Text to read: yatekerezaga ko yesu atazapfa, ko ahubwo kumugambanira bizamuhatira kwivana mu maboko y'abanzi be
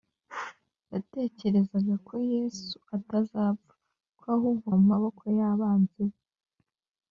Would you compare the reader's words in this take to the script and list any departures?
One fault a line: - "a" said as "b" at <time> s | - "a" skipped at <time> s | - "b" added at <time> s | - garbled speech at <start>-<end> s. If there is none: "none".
- "kumugambanira bizamuhatira kwivana" skipped at 4.7 s